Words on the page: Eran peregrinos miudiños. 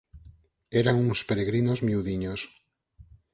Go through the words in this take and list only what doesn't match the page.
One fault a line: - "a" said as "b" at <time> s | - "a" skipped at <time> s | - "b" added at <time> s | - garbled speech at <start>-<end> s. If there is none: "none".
- "uns" added at 0.9 s